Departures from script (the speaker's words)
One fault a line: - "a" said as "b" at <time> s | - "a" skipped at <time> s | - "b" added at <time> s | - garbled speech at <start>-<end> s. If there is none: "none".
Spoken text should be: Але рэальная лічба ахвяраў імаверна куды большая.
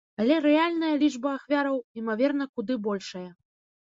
none